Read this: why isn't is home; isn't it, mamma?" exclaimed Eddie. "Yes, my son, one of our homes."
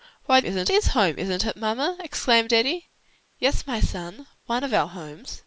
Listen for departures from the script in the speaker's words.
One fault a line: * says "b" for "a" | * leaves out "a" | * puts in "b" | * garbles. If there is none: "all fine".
all fine